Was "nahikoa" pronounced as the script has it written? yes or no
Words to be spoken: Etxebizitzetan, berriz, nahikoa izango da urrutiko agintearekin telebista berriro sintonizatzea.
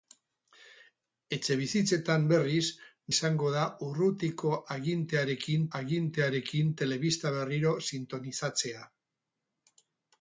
no